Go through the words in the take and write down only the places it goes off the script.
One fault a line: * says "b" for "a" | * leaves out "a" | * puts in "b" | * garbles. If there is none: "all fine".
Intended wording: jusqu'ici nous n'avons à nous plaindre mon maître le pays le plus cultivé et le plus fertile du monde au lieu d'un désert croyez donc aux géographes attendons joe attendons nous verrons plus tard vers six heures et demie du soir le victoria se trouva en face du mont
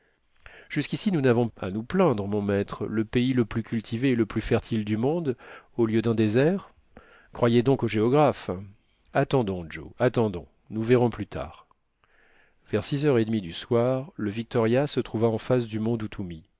all fine